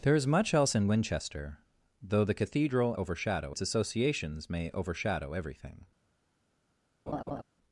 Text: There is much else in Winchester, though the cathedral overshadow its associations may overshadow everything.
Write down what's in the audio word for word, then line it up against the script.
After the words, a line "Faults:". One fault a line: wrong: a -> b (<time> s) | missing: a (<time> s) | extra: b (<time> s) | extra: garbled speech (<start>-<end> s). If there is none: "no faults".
There is much else in Winchester, though the cathedral overshadow its associations may overshadow everything.
Faults:
no faults